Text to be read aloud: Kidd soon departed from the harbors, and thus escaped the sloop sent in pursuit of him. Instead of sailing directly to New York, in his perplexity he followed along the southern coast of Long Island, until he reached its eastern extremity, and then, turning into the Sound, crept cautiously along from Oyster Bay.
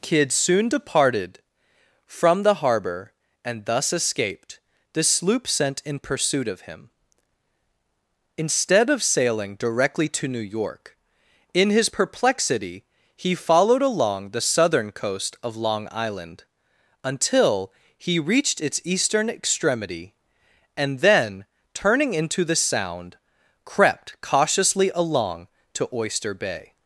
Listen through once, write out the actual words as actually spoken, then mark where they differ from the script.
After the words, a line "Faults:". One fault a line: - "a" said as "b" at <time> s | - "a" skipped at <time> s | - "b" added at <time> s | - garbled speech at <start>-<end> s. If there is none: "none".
Kidd soon departed from the harbor, and thus escaped the sloop sent in pursuit of him. Instead of sailing directly to New York, in his perplexity he followed along the southern coast of Long Island, until he reached its eastern extremity, and then, turning into the Sound, crept cautiously along to Oyster Bay.
Faults:
- "harbors" said as "harbor" at 2.5 s
- "from" said as "to" at 25.7 s